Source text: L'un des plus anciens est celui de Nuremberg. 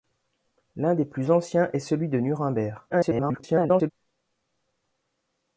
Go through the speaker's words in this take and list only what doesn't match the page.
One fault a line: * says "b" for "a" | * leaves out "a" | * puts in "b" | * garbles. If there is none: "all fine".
* garbles